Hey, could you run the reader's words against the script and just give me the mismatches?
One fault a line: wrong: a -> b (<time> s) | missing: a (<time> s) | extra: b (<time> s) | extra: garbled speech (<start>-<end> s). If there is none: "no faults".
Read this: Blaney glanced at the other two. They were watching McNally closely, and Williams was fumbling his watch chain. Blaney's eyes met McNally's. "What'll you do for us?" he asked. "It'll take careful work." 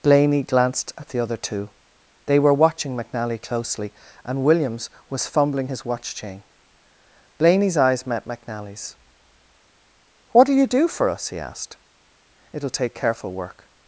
no faults